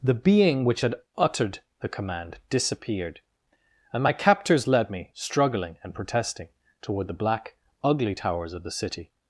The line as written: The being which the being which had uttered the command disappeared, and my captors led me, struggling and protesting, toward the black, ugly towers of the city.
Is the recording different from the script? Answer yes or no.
yes